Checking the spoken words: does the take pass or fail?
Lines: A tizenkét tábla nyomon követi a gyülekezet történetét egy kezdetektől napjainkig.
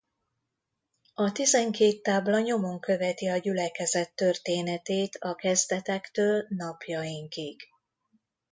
fail